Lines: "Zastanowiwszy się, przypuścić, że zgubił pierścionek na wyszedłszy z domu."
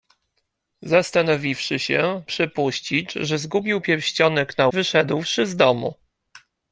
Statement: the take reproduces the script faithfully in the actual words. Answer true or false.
true